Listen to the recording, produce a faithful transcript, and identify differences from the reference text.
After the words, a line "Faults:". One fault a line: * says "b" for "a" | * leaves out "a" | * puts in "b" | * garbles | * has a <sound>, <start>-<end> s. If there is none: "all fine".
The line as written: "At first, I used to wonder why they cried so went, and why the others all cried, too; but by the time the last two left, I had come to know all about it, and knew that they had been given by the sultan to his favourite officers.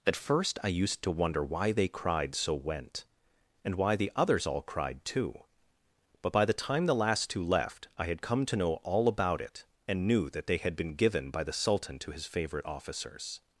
"At first, I used to wonder why they cried so went, and why the others all cried, too; but by the time the last two left, I had come to know all about it, and knew that they had been given by the sultan to his favourite officers.
Faults:
all fine